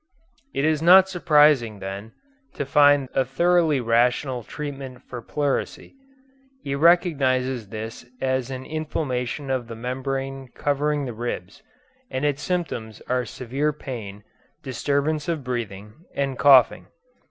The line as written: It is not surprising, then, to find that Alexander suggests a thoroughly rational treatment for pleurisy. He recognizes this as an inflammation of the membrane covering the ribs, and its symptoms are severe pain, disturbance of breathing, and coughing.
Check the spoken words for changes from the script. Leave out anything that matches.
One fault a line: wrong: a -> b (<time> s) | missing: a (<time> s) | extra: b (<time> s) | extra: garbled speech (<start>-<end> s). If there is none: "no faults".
missing: that Alexander suggests (3.1 s)